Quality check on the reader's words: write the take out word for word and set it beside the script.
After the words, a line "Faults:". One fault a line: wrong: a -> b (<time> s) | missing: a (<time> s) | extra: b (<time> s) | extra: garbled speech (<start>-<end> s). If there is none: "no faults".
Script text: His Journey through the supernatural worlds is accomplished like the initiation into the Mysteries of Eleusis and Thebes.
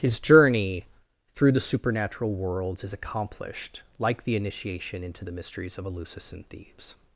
His Journey through the supernatural worlds is accomplished like the initiation into the Mysteries of Eleusis and Thebes.
Faults:
no faults